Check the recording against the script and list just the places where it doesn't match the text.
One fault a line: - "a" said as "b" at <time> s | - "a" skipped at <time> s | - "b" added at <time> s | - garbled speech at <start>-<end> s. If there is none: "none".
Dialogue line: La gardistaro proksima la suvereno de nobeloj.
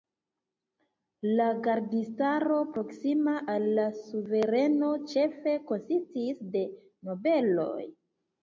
- "al" added at 3.6 s
- "ĉefe konsistis" added at 5.2 s